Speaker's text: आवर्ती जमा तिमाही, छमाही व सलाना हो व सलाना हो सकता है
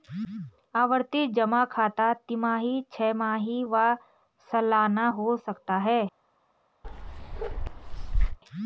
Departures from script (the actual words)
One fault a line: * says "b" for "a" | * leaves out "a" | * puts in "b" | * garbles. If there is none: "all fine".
* puts in "खाता"
* leaves out "व सलाना हो"